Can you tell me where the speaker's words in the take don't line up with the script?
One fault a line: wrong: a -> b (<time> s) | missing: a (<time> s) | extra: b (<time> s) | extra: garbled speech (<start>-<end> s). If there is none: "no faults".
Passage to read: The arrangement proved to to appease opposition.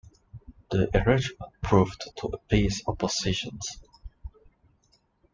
no faults